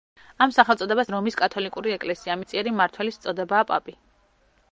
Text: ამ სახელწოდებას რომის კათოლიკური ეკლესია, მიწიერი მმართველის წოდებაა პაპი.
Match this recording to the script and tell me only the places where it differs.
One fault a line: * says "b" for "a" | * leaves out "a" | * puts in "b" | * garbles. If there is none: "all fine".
all fine